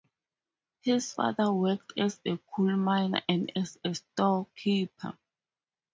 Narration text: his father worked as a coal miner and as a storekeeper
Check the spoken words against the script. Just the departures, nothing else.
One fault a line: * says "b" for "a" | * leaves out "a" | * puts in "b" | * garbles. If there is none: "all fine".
all fine